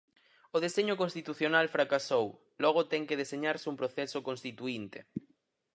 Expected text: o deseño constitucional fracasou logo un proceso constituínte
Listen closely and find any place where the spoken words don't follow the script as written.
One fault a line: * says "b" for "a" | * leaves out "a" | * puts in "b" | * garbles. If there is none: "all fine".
* puts in "ten que deseñarse"